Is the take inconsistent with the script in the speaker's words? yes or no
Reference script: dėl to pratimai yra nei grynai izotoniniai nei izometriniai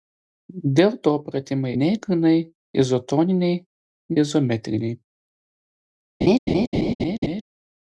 yes